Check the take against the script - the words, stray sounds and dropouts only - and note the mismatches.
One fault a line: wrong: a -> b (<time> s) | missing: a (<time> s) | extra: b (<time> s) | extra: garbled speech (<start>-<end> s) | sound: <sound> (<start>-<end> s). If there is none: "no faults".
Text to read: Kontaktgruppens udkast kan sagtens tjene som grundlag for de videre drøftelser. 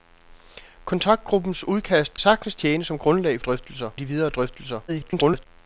missing: kan (2.2 s)
wrong: for -> drøftelser (3.4 s)
extra: garbled speech (4.9-5.5 s)